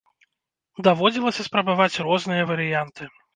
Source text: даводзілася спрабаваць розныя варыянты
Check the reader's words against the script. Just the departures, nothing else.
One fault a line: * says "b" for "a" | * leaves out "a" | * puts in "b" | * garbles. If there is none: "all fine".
all fine